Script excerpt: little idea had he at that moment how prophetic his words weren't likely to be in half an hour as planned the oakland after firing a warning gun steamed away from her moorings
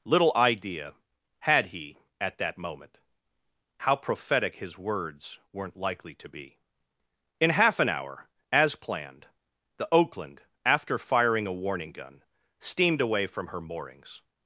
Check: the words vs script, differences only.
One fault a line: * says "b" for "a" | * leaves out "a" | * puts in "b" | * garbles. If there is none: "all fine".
all fine